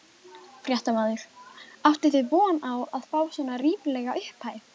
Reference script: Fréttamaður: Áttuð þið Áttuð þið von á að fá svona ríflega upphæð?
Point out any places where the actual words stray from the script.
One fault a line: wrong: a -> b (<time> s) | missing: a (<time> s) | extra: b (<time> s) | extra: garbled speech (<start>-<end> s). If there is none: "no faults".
missing: Áttuð þið (2.3 s)